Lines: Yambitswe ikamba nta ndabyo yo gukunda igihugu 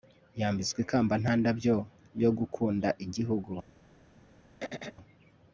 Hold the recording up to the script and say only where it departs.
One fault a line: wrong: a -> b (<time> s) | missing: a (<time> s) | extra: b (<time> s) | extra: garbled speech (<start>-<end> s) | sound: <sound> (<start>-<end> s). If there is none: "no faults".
sound: throat clearing (4.6-5.0 s)